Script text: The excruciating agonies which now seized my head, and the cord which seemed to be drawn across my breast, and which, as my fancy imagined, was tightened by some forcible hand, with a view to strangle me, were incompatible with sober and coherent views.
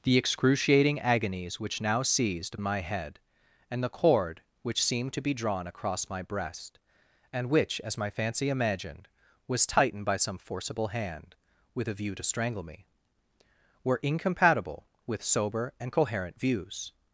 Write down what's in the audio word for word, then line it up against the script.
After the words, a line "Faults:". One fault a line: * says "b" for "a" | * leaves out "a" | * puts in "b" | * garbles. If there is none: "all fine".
The excruciating agonies which now seized my head, and the cord which seemed to be drawn across my breast, and which, as my fancy imagined, was tightened by some forcible hand, with a view to strangle me, were incompatible with sober and coherent views.
Faults:
all fine